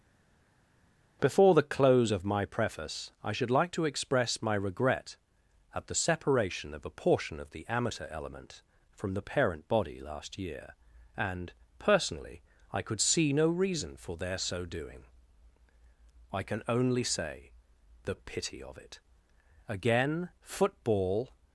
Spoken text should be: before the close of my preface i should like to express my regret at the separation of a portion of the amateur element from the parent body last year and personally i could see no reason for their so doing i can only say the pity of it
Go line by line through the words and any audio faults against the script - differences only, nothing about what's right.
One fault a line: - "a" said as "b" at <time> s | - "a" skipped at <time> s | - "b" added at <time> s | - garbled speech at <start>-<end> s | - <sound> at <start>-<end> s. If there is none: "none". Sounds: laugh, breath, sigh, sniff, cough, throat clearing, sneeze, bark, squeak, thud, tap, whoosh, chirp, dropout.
- "again football" added at 19.7 s